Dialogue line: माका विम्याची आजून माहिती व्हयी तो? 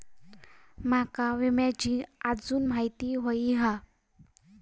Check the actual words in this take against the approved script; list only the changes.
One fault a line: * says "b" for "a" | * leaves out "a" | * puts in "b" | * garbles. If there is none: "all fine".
* says "हा" for "तो"